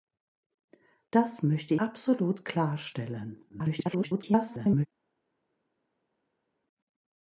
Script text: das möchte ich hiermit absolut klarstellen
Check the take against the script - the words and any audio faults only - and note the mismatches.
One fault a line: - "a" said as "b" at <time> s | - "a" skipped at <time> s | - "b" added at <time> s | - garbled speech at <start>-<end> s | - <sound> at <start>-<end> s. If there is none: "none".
- "ich hiermit" skipped at 1.8 s
- garbled speech at 3.5-4.9 s